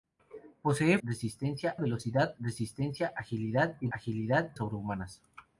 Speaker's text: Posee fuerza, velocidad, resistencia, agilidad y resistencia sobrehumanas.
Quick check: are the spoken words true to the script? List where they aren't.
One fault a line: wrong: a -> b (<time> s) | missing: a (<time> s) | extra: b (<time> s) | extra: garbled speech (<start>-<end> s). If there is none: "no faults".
wrong: fuerza -> resistencia (1.0 s)
wrong: resistencia -> agilidad (3.9 s)